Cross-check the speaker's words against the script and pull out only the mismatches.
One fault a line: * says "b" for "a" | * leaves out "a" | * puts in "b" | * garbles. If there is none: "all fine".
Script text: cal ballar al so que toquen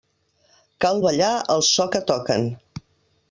all fine